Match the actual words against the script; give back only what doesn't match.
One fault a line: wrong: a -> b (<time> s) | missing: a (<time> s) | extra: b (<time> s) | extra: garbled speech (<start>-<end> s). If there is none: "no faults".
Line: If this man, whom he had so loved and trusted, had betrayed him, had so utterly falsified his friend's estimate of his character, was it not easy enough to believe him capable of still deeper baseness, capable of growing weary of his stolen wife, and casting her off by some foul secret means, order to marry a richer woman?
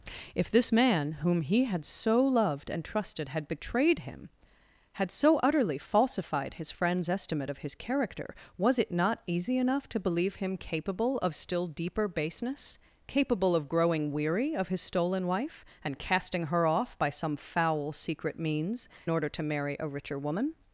no faults